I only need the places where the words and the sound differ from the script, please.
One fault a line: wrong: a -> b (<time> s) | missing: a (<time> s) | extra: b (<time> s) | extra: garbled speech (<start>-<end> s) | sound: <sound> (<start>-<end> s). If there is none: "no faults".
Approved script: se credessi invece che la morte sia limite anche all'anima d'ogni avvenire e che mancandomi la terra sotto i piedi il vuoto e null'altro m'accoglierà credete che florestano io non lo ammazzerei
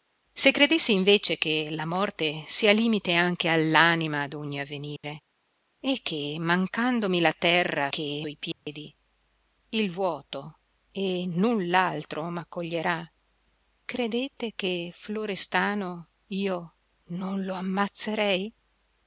sound: dropout (5.0-5.0 s)
wrong: sotto -> che (7.9 s)
sound: dropout (8.5-8.7 s)